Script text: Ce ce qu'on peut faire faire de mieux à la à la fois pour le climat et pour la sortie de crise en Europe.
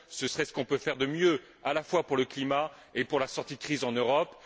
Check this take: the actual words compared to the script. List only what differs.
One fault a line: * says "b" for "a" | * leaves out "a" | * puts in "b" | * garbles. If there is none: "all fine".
* puts in "serait"
* leaves out "faire"
* leaves out "à la"